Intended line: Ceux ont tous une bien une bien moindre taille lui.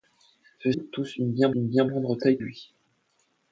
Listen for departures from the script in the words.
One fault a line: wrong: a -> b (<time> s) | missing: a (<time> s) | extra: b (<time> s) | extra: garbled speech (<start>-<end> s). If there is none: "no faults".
no faults